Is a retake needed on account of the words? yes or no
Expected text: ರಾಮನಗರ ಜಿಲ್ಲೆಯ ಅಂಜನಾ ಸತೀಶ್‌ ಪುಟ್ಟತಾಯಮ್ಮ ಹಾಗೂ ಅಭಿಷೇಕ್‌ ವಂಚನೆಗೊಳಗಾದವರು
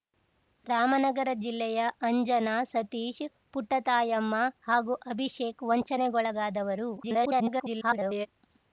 yes